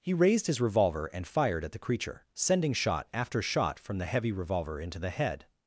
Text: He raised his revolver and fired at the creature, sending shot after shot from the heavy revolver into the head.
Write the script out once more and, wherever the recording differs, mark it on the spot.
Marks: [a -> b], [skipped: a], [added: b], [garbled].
He raised his revolver and fired at the creature, sending shot after shot from the heavy revolver into the head.